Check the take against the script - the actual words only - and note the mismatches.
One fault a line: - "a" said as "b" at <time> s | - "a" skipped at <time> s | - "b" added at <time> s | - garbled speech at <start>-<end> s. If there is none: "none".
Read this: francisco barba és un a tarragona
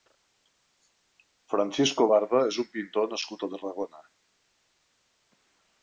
- "pintor nascut" added at 2.8 s